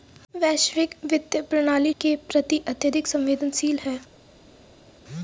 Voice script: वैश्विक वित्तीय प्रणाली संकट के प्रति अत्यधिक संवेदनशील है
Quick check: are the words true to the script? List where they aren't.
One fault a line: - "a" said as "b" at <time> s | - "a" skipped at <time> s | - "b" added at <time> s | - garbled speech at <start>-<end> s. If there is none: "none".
- "संकट" skipped at 1.9 s